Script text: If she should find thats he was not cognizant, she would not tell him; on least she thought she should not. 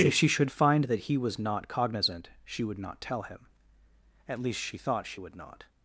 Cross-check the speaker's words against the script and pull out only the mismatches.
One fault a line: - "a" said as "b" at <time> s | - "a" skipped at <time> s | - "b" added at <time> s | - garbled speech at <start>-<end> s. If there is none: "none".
- "thats" said as "that" at 0.8 s
- "on" said as "at" at 4.3 s
- "should" said as "would" at 5.2 s